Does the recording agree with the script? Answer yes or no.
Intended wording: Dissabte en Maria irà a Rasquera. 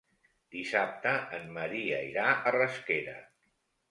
yes